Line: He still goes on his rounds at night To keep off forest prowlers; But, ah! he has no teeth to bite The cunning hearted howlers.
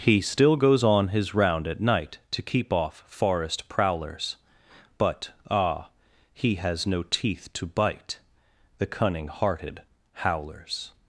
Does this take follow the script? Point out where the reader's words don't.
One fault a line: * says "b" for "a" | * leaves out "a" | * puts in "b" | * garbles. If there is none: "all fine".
* says "round" for "rounds"